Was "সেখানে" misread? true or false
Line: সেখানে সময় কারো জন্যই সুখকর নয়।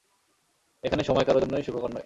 true